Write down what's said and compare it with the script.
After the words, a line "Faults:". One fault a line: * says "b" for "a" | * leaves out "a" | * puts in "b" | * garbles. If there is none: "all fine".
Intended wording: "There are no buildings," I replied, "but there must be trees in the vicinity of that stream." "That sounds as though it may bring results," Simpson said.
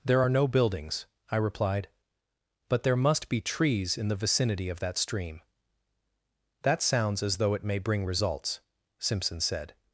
"There are no buildings," I replied, "but there must be trees in the vicinity of that stream." "That sounds as though it may bring results," Simpson said.
Faults:
all fine